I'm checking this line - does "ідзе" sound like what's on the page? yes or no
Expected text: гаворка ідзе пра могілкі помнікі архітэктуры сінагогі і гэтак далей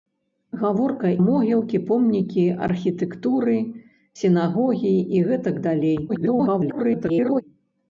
no